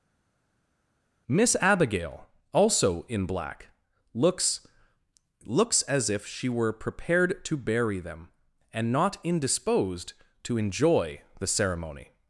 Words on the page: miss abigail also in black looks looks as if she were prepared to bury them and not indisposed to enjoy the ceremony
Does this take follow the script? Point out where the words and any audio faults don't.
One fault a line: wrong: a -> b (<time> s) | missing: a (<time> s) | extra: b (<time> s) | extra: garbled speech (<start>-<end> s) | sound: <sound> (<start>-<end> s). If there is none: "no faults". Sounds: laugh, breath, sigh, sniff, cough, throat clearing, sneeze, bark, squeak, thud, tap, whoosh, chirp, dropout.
no faults